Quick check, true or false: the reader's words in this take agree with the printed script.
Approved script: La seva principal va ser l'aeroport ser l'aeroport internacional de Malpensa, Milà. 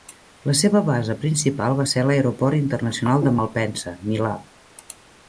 false